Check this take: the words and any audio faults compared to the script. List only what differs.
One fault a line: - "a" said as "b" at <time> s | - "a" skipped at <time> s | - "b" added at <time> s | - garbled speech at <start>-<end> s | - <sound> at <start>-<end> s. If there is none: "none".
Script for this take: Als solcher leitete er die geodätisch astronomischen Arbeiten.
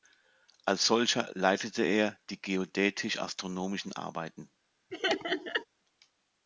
- laugh at 4.9-5.7 s